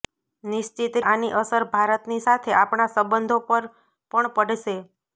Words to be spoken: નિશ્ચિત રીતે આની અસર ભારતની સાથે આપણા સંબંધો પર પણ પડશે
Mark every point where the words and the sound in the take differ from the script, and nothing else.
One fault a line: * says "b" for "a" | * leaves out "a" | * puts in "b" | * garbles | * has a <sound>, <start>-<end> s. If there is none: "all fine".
* leaves out "રીતે"